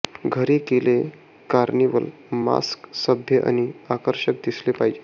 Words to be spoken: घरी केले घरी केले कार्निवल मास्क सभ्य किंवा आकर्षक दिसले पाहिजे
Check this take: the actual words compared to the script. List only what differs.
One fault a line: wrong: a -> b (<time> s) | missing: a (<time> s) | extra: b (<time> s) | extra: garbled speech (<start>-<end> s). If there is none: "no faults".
missing: घरी केले (0.9 s)
wrong: किंवा -> आणि (3.5 s)